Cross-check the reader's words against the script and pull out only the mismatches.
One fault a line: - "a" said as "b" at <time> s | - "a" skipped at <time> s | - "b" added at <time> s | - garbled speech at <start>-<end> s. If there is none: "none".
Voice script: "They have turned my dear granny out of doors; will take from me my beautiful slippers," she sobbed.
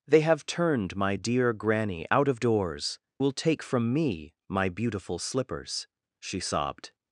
none